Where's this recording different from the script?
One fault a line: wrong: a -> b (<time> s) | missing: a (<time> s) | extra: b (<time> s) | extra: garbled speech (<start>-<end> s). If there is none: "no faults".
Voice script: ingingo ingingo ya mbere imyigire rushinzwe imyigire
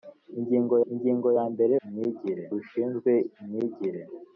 no faults